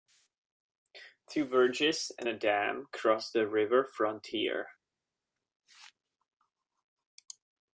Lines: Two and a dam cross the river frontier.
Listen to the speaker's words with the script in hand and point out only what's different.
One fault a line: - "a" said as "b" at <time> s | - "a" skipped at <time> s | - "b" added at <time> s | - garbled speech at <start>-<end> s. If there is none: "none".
- "bridges" added at 1.4 s